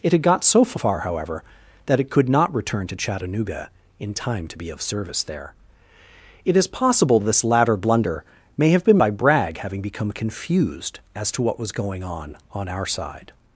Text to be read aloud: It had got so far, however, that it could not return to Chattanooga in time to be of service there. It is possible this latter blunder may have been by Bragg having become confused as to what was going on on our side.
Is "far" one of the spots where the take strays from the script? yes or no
no